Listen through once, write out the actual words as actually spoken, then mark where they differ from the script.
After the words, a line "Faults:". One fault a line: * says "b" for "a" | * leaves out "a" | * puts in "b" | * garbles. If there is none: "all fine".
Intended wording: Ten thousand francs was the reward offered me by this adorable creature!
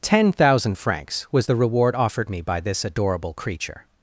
Ten thousand francs was the reward offered me by this adorable creature!
Faults:
all fine